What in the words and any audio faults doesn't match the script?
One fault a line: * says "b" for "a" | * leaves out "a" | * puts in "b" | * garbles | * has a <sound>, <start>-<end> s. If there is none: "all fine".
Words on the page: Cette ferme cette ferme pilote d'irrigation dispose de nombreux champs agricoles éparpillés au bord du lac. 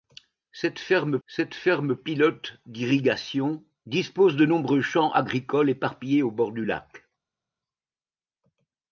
all fine